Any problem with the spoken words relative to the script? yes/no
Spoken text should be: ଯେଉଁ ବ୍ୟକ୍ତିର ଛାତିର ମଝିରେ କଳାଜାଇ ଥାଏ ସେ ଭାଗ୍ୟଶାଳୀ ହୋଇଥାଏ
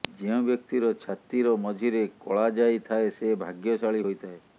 no